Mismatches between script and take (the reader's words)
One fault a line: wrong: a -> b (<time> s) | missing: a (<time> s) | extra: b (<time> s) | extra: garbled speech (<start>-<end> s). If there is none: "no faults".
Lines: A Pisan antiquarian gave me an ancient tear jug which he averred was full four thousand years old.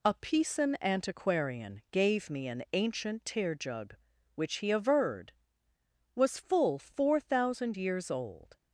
no faults